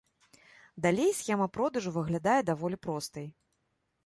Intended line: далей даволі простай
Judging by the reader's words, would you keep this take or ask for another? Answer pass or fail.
fail